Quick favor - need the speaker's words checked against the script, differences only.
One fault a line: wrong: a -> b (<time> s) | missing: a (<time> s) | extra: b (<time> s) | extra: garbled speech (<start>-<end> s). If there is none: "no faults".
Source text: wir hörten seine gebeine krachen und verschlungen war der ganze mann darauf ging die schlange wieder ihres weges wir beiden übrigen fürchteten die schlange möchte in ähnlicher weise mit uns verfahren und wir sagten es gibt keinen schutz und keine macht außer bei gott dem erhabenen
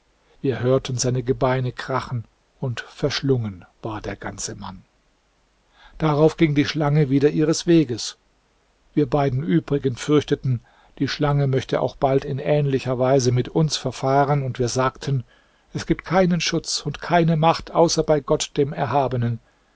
extra: auch bald (11.8 s)